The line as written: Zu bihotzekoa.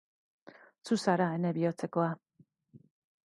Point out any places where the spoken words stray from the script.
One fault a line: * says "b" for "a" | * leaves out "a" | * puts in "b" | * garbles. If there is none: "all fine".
* puts in "zara ene"